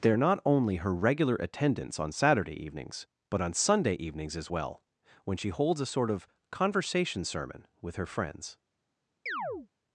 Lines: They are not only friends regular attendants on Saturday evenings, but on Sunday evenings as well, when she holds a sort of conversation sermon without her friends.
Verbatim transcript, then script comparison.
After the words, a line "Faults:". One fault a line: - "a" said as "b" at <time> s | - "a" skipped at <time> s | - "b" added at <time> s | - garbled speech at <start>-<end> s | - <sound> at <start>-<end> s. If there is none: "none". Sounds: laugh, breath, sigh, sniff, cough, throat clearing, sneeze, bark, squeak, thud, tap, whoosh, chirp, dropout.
They are not only her regular attendants on Saturday evenings, but on Sunday evenings as well, when she holds a sort of conversation sermon with her friends.
Faults:
- "friends" said as "her" at 0.8 s
- "without" said as "with" at 7.8 s
- chirp at 9.3-9.7 s